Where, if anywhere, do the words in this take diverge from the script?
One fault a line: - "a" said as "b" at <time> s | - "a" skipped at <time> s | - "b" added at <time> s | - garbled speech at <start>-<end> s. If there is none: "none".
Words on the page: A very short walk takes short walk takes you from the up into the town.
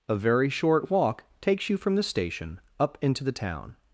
- "short walk takes" skipped at 1.7 s
- "station" added at 2.0 s